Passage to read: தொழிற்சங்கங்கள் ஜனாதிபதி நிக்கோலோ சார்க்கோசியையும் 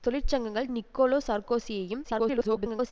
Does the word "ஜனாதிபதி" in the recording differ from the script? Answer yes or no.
yes